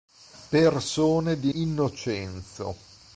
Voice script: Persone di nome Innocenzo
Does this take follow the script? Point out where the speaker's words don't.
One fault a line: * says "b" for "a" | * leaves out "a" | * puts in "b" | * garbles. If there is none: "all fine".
* leaves out "nome"